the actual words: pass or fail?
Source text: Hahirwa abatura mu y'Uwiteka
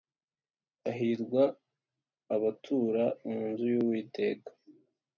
fail